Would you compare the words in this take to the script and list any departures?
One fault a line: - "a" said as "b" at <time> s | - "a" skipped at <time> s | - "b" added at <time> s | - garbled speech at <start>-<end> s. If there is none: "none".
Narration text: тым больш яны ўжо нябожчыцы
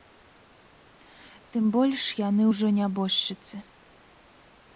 none